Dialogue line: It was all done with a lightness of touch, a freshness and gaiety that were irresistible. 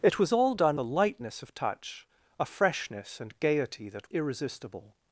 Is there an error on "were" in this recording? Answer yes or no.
yes